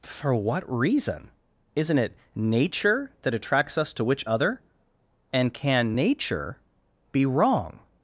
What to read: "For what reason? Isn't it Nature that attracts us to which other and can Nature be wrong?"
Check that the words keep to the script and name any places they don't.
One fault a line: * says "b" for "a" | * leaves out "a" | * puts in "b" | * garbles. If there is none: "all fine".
all fine